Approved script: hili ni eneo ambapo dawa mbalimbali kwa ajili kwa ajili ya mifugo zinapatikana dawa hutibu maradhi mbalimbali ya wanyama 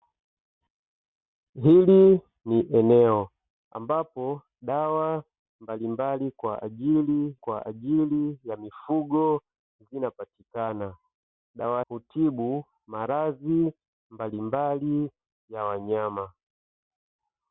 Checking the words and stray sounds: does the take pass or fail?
pass